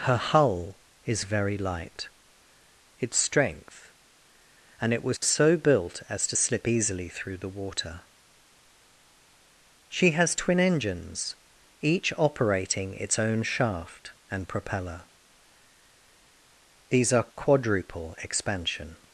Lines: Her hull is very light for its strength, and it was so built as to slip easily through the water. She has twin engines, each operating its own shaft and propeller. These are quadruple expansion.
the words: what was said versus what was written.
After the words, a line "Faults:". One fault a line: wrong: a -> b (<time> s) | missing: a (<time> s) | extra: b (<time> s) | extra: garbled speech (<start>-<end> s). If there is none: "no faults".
Her hull is very light its strength, and it was so built as to slip easily through the water. She has twin engines, each operating its own shaft and propeller. These are quadruple expansion.
Faults:
missing: for (2.1 s)